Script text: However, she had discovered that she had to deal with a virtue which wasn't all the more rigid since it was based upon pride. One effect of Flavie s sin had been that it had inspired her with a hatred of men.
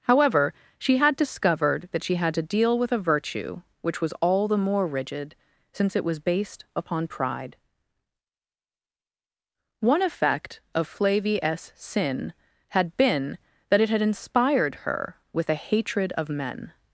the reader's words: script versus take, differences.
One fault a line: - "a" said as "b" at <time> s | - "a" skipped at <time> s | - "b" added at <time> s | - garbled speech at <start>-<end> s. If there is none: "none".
- "wasn't" said as "was" at 4.0 s